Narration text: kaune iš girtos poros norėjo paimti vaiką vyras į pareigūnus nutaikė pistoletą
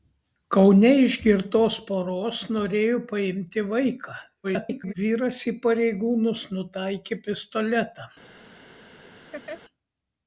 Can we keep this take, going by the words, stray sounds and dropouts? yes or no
no